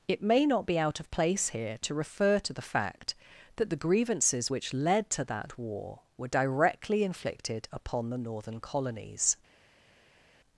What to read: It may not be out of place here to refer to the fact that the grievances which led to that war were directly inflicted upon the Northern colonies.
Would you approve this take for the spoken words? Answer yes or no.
yes